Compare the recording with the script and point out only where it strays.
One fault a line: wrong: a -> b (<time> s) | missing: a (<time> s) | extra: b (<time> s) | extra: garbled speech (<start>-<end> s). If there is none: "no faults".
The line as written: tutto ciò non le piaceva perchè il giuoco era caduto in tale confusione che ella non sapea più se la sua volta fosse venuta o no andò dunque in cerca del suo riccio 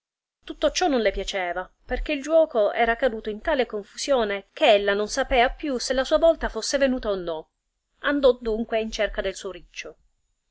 no faults